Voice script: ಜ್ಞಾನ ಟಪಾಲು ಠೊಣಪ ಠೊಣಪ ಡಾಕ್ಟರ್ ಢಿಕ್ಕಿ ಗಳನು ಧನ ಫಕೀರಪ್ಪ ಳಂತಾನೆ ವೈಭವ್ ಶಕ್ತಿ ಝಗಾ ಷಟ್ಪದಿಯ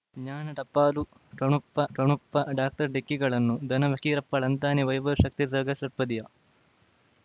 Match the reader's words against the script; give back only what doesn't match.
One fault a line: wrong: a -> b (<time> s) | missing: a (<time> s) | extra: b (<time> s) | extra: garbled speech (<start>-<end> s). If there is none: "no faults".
no faults